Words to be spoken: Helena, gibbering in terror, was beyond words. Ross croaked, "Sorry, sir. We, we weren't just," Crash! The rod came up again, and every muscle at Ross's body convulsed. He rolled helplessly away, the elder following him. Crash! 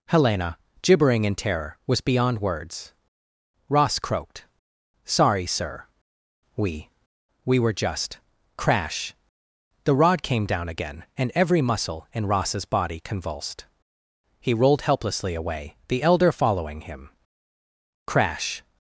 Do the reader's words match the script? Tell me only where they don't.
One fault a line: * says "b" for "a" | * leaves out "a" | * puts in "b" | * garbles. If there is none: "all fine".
* says "were" for "weren't"
* says "down" for "up"
* says "in" for "at"